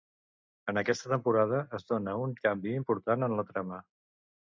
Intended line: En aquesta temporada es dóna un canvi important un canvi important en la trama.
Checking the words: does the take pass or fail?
fail